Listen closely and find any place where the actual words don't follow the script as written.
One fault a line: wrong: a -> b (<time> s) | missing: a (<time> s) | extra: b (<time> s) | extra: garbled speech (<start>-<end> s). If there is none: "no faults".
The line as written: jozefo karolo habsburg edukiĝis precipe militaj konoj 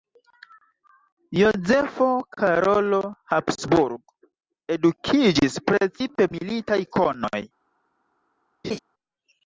no faults